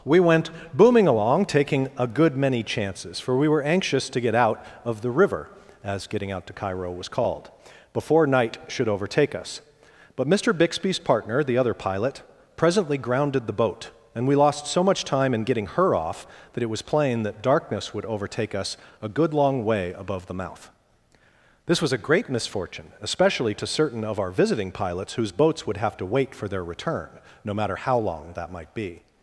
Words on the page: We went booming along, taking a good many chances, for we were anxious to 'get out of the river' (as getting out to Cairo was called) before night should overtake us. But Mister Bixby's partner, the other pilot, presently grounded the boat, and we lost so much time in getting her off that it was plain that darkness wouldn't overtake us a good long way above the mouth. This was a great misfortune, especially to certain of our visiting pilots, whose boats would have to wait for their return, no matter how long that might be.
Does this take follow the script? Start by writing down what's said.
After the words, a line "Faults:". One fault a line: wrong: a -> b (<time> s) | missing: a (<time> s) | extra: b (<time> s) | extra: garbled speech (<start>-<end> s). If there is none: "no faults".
We went booming along, taking a good many chances, for we were anxious to 'get out of the river' (as getting out to Cairo was called) before night should overtake us. But Mister Bixby's partner, the other pilot, presently grounded the boat, and we lost so much time in getting her off that it was plain that darkness would overtake us a good long way above the mouth. This was a great misfortune, especially to certain of our visiting pilots, whose boats would have to wait for their return, no matter how long that might be.
Faults:
wrong: wouldn't -> would (17.9 s)